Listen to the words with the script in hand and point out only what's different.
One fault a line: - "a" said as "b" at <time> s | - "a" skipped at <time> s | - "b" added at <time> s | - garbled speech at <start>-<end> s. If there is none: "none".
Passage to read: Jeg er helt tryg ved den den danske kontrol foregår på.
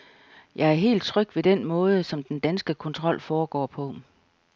- "måde som" added at 1.6 s